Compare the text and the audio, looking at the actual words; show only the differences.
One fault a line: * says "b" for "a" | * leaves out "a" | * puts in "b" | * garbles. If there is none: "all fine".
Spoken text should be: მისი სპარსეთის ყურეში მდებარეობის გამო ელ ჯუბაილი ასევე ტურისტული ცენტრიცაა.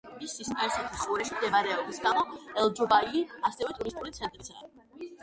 all fine